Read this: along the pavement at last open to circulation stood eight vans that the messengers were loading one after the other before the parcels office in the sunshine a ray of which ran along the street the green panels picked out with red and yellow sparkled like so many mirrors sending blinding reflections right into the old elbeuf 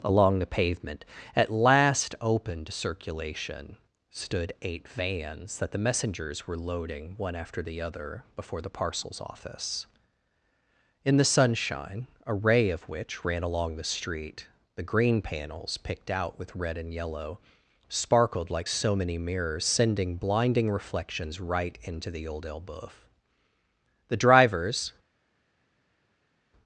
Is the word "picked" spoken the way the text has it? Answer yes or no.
yes